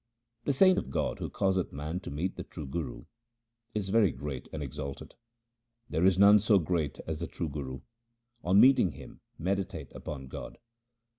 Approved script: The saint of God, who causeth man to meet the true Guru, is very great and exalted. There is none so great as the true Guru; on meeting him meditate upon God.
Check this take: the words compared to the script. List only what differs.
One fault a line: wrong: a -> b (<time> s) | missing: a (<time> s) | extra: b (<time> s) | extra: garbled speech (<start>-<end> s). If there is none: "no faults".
no faults